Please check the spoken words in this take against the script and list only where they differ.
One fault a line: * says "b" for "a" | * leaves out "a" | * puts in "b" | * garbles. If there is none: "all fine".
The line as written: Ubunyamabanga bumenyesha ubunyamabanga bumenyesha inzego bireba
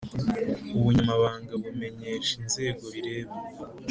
* leaves out "ubunyamabanga bumenyesha"